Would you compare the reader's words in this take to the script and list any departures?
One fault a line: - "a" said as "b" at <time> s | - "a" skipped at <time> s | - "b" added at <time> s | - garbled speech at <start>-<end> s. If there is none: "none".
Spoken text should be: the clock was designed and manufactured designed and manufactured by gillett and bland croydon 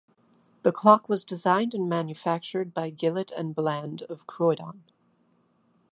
- "designed and manufactured" skipped at 2.7 s
- "of" added at 4.1 s